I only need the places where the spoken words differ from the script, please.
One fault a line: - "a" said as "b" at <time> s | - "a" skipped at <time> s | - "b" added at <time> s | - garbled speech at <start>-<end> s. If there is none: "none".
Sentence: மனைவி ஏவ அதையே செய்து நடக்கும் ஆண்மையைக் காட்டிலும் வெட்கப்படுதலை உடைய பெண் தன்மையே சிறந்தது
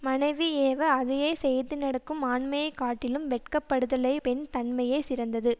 - "உடைய" skipped at 4.1 s